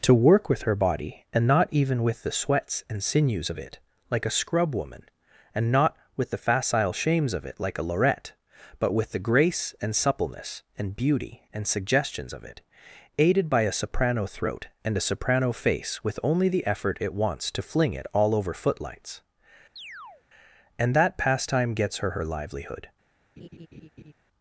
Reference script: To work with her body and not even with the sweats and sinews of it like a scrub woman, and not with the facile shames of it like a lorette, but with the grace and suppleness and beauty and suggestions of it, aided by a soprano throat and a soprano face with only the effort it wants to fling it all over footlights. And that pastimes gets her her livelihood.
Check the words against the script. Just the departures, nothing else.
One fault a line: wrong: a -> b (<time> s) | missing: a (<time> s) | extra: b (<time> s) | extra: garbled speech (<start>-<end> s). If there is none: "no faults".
wrong: pastimes -> pastime (21.2 s)